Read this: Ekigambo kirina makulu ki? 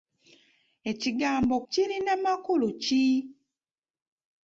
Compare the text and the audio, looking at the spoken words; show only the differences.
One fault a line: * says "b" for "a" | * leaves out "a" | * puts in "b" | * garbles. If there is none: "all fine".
all fine